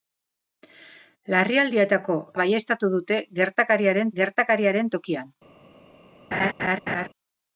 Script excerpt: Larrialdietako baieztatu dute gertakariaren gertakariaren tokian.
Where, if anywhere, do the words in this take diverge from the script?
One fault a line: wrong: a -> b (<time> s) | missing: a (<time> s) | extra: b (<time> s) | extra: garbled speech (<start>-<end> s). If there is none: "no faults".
no faults